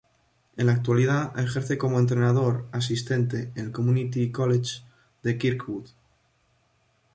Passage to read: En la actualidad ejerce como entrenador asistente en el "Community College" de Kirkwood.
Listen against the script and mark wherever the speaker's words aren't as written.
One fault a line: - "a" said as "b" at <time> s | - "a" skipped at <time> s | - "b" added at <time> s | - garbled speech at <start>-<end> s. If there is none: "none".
none